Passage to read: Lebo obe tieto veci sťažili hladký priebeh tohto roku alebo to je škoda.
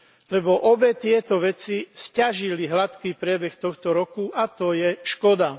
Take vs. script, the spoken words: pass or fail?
fail